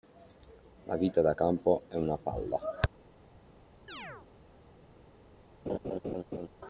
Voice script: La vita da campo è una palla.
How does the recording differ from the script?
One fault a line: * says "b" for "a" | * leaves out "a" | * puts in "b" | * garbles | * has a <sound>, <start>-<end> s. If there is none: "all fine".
* has a chirp, 3.9-4.3 s
* has a laugh, 5.7-6.5 s